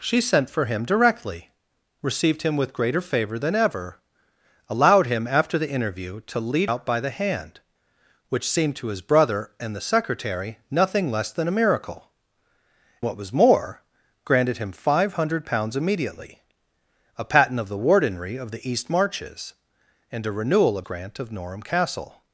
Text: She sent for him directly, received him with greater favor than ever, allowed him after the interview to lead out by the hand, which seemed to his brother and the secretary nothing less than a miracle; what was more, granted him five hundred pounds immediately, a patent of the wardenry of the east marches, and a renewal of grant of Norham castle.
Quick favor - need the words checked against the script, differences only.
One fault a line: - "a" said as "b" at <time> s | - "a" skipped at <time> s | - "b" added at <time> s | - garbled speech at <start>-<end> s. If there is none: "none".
none